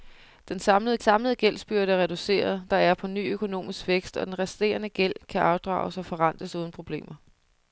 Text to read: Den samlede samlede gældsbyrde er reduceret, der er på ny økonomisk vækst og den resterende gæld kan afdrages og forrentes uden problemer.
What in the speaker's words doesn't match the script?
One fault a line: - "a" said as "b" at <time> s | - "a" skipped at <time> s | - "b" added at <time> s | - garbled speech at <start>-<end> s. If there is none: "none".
none